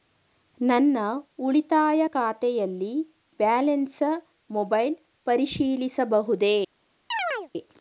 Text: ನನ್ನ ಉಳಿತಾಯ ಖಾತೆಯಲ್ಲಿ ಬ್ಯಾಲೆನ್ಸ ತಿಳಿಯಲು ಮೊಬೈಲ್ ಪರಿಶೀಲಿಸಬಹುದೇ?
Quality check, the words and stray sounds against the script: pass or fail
fail